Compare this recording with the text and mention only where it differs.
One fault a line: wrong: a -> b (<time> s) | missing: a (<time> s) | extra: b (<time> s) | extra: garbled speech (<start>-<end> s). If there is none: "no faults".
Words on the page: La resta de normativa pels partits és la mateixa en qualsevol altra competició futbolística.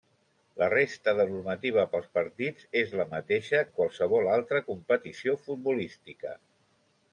no faults